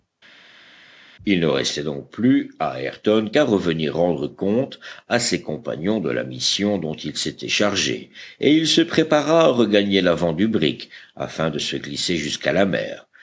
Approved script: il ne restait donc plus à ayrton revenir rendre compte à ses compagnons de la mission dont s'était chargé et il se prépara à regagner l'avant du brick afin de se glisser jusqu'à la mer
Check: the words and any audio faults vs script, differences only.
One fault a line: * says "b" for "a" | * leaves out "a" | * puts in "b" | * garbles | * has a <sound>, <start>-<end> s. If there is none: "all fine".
* puts in "qu'à"
* puts in "il"